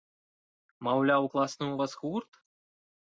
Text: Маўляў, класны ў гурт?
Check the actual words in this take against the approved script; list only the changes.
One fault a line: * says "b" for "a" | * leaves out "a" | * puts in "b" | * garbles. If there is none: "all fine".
* puts in "вас"